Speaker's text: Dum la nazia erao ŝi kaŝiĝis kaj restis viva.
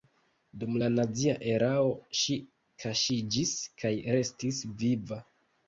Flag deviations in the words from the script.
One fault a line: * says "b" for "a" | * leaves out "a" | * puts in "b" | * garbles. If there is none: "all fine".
all fine